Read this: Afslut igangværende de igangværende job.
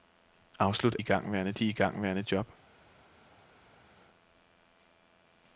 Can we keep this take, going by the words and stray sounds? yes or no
yes